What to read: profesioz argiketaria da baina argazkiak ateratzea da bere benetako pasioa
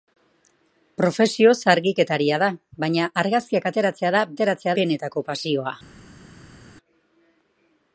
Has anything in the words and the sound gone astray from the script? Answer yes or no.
yes